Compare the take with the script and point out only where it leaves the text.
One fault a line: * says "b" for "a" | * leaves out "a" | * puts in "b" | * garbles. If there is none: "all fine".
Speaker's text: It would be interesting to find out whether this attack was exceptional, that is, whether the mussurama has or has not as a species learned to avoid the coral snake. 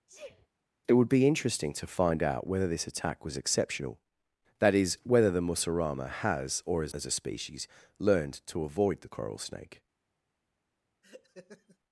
* leaves out "not"